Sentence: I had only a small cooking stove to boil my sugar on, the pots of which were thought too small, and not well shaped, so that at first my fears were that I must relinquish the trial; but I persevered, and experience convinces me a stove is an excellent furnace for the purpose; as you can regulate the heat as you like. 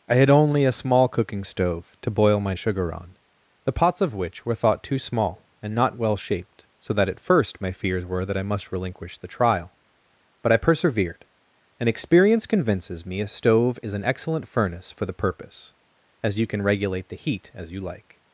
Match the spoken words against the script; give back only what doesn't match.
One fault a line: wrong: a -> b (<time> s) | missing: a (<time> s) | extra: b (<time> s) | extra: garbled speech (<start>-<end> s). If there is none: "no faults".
no faults